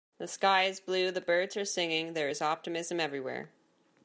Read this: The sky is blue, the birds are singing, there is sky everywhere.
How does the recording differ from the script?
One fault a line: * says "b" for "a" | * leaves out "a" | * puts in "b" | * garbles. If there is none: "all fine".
* says "optimism" for "sky"